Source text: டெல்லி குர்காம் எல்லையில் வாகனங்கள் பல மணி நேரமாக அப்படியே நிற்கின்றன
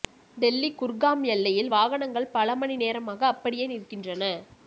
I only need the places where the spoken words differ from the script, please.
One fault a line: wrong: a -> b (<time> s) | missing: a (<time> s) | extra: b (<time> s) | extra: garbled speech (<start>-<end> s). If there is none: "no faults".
no faults